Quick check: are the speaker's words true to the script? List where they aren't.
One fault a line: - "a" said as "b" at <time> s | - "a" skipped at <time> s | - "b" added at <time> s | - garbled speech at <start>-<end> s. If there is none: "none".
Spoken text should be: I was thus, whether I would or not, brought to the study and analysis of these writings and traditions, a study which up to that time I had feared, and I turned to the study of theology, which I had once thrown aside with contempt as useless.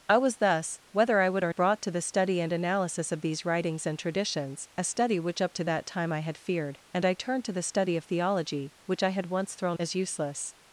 - "not" skipped at 1.5 s
- "aside with contempt" skipped at 9.8 s